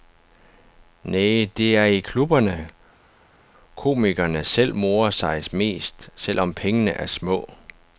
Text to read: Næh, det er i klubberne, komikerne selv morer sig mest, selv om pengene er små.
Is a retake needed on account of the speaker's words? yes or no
no